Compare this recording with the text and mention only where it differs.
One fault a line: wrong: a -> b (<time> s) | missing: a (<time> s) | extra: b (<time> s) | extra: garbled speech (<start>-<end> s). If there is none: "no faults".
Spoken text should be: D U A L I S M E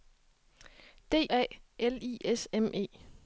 missing: U (1.3 s)